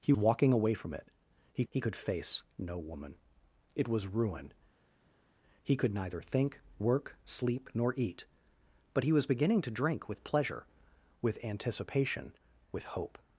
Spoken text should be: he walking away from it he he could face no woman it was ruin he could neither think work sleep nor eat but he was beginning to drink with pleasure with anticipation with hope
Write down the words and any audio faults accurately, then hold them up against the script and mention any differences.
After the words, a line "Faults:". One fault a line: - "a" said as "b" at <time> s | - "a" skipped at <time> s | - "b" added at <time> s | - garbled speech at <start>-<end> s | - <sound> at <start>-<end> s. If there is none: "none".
he walking away from it he he could face no woman it was ruin he could neither think work sleep nor eat but he was beginning to drink with pleasure with anticipation with hope
Faults:
none